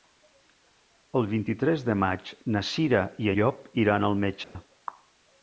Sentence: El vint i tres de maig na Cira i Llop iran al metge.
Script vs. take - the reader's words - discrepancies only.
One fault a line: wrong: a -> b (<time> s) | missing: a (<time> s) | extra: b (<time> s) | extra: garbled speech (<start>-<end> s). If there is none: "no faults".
no faults